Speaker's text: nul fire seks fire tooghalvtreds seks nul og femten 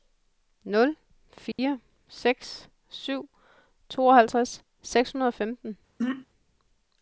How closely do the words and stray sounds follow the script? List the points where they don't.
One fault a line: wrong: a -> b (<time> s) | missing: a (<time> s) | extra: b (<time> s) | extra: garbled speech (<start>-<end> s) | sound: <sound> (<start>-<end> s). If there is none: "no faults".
sound: dropout (1.5-1.6 s)
wrong: fire -> syv (2.9 s)
wrong: nul -> hundrede (5.1 s)
sound: throat clearing (6.0-6.3 s)